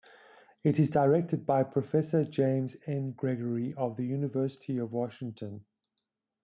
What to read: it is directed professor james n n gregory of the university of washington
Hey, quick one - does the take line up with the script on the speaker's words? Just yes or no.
no